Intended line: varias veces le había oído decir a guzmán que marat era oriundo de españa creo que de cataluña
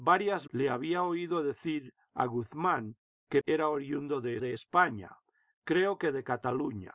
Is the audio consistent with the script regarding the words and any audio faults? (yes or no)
no